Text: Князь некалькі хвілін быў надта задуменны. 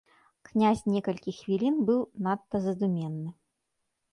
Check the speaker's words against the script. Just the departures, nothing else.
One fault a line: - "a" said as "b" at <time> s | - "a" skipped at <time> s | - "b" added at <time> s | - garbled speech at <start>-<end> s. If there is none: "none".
none